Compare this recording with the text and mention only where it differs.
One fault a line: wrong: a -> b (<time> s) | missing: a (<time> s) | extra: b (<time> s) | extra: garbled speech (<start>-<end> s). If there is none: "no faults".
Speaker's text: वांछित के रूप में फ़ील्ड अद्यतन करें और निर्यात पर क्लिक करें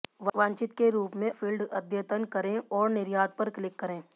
no faults